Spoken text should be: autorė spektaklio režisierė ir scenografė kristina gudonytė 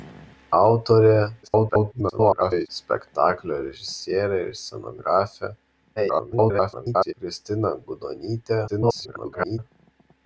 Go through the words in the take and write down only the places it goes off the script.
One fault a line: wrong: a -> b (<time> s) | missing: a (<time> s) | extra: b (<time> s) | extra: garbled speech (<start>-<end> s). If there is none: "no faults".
extra: garbled speech (1.4-2.7 s)
extra: garbled speech (6.0-7.1 s)
extra: garbled speech (8.7-9.6 s)